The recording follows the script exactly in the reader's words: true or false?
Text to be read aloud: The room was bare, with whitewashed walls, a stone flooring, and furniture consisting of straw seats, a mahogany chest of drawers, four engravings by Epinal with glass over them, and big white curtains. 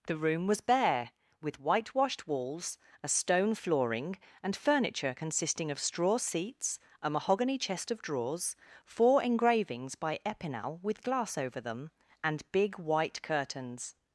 true